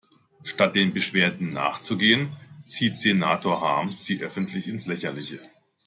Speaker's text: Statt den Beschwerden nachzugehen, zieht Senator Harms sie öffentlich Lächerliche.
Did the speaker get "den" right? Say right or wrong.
right